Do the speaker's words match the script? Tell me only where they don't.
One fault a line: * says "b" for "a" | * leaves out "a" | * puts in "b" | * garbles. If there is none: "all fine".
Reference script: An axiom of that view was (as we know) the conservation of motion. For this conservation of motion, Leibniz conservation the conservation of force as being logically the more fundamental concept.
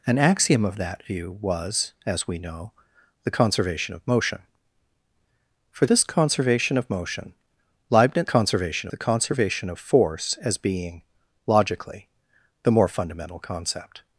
all fine